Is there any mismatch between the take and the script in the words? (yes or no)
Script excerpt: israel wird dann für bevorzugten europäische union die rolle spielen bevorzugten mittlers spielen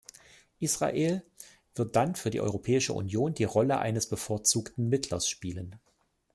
yes